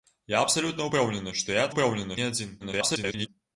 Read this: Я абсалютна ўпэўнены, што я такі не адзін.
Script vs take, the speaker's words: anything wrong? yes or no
yes